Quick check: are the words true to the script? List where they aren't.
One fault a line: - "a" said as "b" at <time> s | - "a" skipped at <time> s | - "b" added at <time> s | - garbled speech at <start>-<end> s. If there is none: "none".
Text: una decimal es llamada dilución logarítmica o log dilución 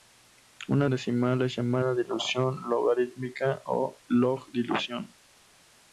none